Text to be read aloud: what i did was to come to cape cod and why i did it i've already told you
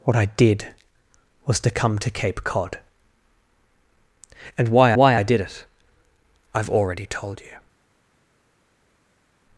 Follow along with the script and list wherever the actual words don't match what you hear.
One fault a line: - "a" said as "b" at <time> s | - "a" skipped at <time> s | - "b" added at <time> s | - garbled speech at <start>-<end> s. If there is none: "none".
- "why" added at 4.9 s